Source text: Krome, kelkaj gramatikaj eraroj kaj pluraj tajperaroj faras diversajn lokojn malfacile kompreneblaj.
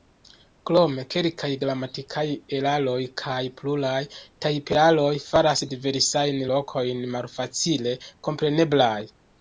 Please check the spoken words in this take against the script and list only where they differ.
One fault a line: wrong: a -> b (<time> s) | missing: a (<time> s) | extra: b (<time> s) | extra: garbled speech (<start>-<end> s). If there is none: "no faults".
no faults